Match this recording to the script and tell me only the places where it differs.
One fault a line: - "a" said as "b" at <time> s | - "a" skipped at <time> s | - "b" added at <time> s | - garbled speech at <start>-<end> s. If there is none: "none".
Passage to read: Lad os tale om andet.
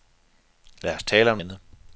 none